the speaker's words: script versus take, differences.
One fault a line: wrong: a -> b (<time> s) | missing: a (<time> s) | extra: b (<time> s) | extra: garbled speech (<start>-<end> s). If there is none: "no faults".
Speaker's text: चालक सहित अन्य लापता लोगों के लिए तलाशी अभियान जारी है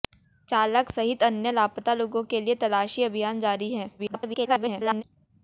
extra: garbled speech (4.0-5.0 s)